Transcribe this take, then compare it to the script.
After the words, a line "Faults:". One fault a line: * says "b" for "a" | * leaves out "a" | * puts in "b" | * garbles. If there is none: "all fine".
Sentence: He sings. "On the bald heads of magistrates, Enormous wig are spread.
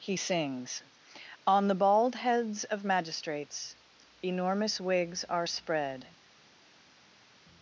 He sings. "On the bald heads of magistrates, Enormous wigs are spread.
Faults:
* says "wigs" for "wig"